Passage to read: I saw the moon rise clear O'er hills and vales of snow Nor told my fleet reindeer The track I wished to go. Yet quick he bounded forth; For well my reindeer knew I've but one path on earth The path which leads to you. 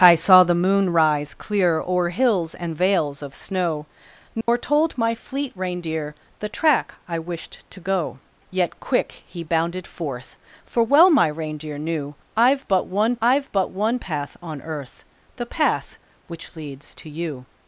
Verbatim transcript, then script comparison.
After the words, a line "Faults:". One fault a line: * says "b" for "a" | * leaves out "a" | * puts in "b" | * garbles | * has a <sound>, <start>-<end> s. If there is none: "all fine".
I saw the moon rise clear O'er hills and vales of snow Nor told my fleet reindeer The track I wished to go. Yet quick he bounded forth; For well my reindeer knew I've but one I've but one path on earth The path which leads to you.
Faults:
* has a dropout, 4.4-4.5 s
* puts in "I've but one"